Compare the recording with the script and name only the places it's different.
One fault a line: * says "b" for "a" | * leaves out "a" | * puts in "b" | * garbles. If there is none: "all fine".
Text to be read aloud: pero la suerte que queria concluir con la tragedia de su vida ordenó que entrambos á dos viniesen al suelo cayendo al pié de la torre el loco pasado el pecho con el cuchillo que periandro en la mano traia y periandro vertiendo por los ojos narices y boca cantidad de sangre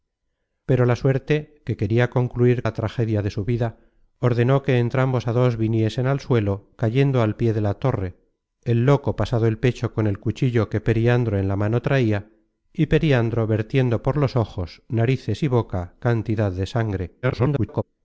* leaves out "con"
* garbles